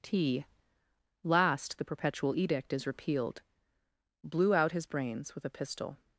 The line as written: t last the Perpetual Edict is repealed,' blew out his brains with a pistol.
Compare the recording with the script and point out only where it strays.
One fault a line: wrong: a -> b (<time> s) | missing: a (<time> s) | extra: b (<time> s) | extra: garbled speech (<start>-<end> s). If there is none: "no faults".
no faults